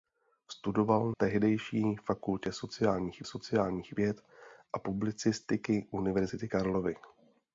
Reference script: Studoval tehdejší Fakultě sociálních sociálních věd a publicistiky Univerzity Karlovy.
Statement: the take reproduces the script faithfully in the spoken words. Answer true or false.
true